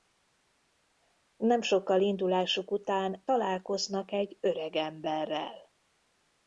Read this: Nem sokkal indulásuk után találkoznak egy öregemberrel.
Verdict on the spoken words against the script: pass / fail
pass